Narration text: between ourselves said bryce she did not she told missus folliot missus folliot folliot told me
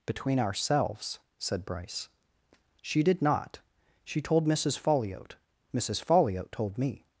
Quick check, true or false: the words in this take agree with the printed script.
false